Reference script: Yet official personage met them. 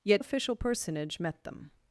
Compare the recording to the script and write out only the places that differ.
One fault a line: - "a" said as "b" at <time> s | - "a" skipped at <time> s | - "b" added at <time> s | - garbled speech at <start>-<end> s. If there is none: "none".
none